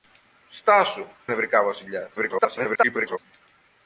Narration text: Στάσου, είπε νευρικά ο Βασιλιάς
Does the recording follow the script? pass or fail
fail